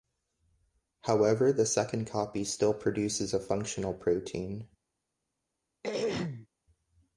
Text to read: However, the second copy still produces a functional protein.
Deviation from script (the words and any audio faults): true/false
true